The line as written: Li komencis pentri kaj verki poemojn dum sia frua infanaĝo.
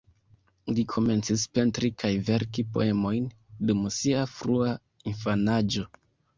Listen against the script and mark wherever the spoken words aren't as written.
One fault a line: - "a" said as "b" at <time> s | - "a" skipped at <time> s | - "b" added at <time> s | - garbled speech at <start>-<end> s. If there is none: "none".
none